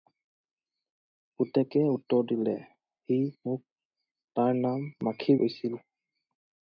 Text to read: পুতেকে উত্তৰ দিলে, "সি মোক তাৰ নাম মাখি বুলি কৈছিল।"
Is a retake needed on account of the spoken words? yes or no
yes